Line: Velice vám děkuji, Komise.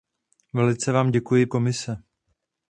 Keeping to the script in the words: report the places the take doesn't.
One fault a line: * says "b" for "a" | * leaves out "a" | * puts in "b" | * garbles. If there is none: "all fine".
all fine